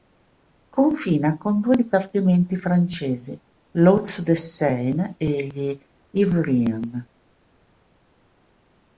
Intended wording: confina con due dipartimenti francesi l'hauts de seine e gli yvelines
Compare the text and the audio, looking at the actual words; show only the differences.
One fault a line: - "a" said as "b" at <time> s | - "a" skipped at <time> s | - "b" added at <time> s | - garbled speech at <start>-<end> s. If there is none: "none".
none